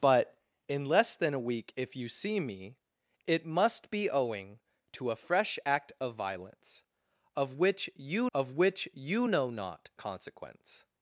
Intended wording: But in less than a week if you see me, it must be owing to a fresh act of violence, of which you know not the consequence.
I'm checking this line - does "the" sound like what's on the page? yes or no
no